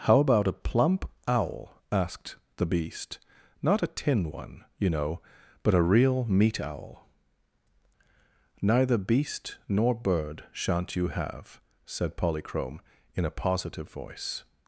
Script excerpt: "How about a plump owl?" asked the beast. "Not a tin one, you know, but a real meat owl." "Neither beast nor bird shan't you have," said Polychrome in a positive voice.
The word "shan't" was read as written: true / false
true